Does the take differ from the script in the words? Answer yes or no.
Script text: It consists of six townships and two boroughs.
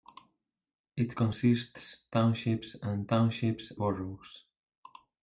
yes